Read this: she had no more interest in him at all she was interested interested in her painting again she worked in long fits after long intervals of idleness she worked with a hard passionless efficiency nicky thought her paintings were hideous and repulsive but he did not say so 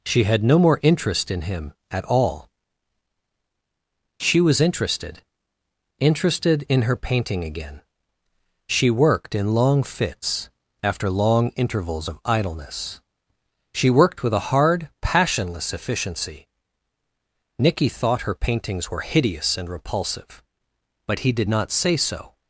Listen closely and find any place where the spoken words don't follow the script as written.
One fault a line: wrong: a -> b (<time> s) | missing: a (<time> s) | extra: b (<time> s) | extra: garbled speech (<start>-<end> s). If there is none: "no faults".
no faults